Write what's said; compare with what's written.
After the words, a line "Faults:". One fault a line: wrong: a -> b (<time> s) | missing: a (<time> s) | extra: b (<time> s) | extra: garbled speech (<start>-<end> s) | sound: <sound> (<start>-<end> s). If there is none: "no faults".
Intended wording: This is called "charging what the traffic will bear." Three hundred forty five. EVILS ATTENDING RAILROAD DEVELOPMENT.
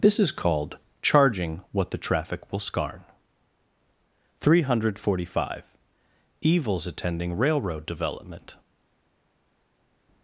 This is called "charging what the traffic will scarn." Three hundred forty five. EVILS ATTENDING RAILROAD DEVELOPMENT.
Faults:
wrong: bear -> scarn (2.6 s)